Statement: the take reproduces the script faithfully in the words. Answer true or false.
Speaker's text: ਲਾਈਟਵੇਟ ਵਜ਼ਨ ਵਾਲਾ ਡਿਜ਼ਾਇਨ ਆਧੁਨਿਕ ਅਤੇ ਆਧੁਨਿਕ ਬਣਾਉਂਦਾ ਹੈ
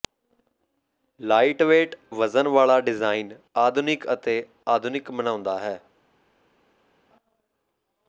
true